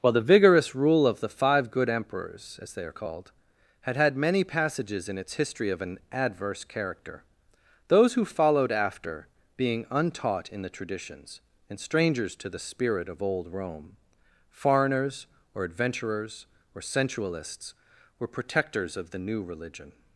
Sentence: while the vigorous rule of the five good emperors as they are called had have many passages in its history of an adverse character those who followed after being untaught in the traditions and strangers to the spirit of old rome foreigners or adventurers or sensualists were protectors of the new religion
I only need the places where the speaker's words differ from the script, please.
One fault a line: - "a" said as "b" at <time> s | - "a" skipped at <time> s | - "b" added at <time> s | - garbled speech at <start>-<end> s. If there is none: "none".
- "have" said as "had" at 4.0 s